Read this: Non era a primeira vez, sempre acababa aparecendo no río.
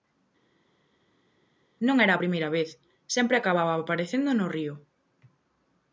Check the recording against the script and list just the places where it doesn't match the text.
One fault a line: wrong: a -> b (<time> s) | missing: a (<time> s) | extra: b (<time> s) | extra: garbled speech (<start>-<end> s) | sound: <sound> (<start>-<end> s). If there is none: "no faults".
no faults